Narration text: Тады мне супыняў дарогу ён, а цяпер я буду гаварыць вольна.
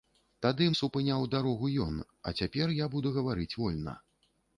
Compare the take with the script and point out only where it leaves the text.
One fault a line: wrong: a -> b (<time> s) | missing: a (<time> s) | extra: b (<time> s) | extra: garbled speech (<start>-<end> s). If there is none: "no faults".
missing: мне (0.7 s)